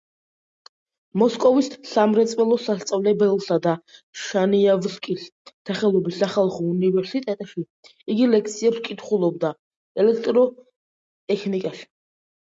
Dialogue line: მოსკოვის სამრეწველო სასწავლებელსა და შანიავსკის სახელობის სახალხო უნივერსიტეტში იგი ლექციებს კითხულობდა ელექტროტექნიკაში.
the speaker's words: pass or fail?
pass